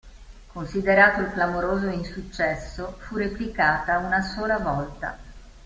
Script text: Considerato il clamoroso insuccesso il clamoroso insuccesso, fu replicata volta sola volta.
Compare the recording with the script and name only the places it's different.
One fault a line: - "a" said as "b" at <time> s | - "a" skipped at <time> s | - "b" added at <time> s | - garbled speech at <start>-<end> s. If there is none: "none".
- "il clamoroso insuccesso" skipped at 3.0 s
- "volta" said as "una" at 4.0 s